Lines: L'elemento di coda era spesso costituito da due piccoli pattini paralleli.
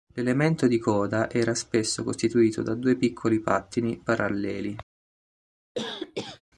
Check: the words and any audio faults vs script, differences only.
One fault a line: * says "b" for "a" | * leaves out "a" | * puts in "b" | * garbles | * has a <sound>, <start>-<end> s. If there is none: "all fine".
* has a cough, 5.7-6.4 s